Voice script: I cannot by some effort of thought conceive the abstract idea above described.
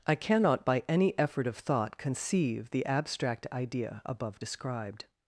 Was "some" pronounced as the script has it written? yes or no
no